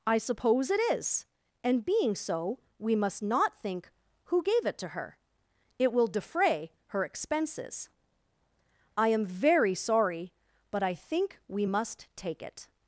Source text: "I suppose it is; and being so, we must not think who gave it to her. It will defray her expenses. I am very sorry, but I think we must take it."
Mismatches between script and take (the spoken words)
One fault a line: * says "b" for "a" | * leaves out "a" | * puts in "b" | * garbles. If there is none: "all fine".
all fine